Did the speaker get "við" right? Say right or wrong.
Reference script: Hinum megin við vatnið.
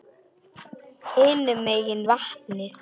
wrong